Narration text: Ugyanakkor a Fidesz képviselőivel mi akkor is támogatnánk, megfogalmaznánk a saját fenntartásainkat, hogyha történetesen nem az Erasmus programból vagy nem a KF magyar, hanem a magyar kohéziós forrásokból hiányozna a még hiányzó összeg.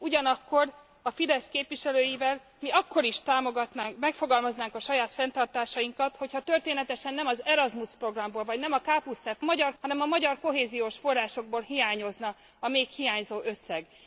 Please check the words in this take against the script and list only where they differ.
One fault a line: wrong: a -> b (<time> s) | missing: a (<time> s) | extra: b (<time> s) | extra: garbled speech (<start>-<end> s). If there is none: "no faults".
no faults